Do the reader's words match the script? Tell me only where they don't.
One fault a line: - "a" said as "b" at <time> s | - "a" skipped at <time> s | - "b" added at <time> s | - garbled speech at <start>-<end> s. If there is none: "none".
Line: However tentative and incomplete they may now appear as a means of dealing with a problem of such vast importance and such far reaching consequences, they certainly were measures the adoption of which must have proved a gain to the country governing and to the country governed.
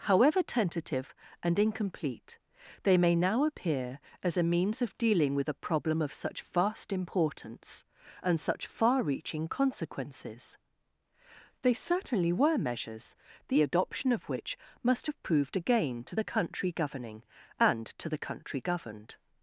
none